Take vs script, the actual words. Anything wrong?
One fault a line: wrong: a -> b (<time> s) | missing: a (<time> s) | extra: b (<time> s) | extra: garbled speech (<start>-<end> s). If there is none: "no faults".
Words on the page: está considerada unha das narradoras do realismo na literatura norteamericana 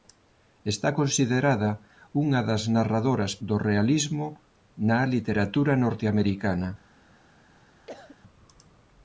no faults